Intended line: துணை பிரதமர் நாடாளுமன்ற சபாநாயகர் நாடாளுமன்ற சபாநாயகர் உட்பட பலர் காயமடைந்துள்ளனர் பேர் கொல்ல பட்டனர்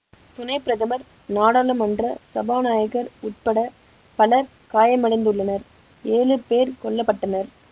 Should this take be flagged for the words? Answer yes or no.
yes